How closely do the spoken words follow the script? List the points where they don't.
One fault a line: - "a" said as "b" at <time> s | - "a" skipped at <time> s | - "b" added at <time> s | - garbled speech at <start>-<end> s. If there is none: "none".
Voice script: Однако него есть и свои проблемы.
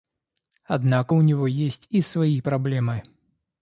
- "у" added at 1.1 s